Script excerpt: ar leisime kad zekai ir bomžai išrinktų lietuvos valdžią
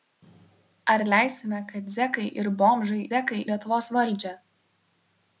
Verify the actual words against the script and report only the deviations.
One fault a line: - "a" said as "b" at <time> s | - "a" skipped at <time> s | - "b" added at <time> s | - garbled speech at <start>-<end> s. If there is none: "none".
- "išrinktų" said as "zekai" at 3.1 s